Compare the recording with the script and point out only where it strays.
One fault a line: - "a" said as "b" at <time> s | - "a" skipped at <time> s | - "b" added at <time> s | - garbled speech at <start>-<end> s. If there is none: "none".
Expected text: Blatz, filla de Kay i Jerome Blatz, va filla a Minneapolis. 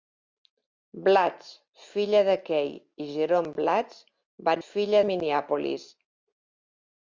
none